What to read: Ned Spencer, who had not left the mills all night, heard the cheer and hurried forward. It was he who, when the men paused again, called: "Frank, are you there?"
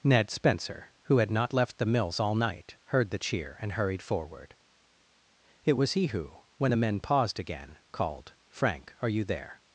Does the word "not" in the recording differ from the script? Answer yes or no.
no